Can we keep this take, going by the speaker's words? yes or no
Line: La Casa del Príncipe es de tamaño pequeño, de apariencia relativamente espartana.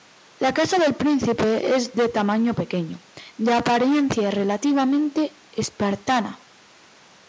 yes